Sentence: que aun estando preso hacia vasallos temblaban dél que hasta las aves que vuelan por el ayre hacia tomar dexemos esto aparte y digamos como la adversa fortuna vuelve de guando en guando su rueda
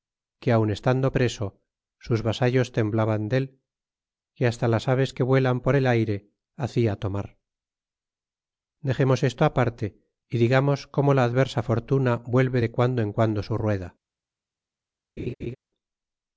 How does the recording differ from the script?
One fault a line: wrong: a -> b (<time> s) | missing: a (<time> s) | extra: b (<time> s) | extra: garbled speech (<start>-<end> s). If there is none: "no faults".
wrong: hacia -> sus (2.1 s)